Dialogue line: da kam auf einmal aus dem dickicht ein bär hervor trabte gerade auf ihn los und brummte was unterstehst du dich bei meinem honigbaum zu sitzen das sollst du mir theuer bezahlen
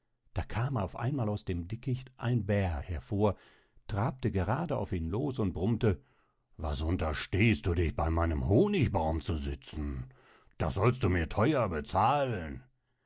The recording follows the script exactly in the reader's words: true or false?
true